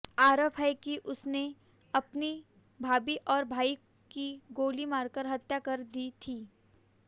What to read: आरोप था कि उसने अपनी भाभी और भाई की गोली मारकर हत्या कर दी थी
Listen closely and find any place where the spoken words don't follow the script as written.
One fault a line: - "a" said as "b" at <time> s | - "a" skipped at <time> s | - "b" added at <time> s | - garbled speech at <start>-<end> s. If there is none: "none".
- "था" said as "है" at 0.6 s